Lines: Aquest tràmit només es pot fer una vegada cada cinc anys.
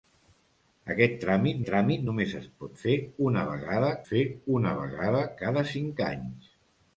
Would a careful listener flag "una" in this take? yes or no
no